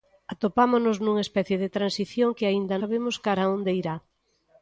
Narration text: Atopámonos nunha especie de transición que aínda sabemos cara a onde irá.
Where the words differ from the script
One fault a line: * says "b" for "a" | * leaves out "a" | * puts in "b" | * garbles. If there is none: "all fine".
all fine